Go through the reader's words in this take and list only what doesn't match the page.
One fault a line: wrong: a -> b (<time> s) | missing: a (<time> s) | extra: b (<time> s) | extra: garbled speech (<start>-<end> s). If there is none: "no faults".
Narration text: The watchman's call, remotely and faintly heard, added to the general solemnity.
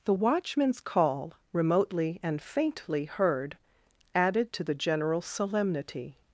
no faults